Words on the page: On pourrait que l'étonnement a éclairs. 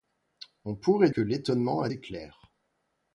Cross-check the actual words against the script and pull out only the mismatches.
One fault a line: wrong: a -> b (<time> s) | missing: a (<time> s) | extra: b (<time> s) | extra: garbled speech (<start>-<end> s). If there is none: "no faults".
no faults